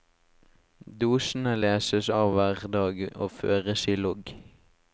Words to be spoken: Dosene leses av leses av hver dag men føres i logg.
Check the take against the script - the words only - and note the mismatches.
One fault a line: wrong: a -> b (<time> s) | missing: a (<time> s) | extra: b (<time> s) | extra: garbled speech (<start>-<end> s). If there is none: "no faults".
missing: leses av (2.3 s)
wrong: men -> og (3.2 s)